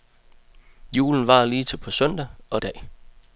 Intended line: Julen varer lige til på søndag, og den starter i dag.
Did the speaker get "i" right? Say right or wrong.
wrong